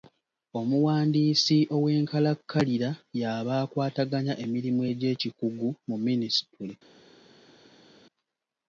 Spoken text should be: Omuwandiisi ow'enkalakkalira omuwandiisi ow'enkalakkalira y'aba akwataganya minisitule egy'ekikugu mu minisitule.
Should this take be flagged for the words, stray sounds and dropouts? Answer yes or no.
yes